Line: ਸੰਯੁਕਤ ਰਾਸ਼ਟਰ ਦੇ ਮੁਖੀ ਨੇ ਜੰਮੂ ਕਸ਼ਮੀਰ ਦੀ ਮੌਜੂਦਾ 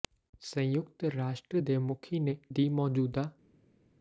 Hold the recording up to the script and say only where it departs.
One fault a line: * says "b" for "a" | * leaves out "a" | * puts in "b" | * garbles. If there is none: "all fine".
* leaves out "ਜੰਮੂ ਕਸ਼ਮੀਰ"